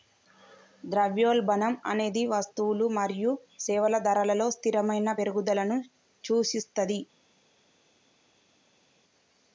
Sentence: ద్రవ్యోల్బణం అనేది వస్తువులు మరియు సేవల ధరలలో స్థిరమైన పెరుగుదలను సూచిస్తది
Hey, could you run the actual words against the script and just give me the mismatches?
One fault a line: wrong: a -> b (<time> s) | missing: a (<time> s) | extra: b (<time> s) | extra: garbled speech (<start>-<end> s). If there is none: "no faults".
no faults